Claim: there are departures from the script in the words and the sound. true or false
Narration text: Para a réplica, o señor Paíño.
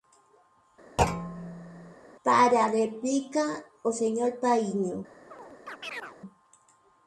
true